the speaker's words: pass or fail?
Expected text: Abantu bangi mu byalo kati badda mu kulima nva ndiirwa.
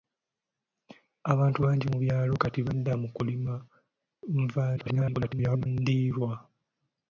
fail